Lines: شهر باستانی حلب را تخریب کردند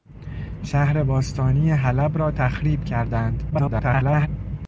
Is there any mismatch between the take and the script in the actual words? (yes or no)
yes